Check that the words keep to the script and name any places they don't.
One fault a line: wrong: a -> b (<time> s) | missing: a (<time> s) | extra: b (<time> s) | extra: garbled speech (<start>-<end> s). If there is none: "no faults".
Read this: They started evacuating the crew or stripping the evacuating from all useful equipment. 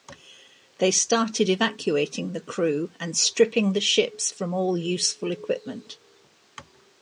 wrong: or -> and (3.0 s)
wrong: evacuating -> ships (3.8 s)